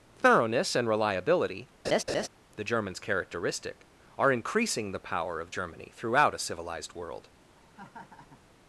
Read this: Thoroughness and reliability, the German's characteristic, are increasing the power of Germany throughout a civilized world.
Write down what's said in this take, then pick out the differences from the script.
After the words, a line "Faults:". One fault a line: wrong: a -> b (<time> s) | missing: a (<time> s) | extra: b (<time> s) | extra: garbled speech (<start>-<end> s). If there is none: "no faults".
Thoroughness and reliability, the German's characteristic, are increasing the power of Germany throughout a civilized world.
Faults:
no faults